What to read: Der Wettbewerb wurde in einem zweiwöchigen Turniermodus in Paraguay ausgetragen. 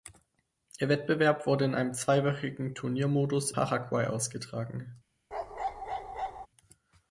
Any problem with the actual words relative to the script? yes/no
yes